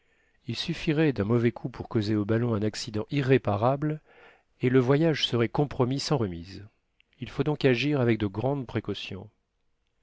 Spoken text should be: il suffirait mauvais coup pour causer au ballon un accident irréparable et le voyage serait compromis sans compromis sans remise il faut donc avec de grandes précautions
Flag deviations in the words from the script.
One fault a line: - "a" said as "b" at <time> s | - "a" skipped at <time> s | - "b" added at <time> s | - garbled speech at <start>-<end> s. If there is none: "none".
- "d'un" added at 1.1 s
- "compromis sans" skipped at 6.2 s
- "agir" added at 7.6 s